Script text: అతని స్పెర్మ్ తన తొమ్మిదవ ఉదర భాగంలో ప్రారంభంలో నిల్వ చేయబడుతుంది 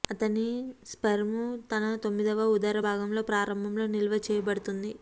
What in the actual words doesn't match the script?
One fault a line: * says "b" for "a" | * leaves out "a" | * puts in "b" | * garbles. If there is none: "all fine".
all fine